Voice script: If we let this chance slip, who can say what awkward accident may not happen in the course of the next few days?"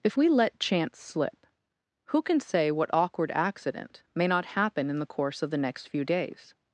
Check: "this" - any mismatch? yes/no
yes